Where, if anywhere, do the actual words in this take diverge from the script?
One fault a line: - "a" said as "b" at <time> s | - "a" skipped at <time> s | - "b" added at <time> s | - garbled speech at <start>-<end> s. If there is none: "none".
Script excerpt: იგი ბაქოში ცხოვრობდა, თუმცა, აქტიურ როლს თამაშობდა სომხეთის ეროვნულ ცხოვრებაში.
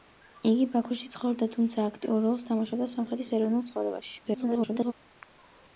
- garbled speech at 4.2-4.9 s